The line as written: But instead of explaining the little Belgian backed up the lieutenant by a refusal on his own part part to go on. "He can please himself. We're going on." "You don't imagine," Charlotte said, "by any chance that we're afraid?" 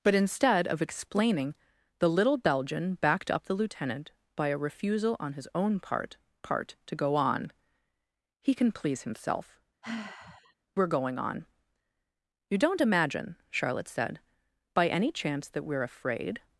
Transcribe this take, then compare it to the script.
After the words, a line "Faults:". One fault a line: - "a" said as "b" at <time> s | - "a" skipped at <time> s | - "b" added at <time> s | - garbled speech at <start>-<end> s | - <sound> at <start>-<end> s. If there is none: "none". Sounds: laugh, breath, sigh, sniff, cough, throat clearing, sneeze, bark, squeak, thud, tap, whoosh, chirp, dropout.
But instead of explaining the little Belgian backed up the lieutenant by a refusal on his own part part to go on. "He can please himself. We're going on." "You don't imagine," Charlotte said, "by any chance that we're afraid?"
Faults:
- sigh at 9.8-10.5 s